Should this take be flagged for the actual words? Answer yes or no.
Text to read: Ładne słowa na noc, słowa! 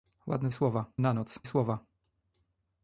no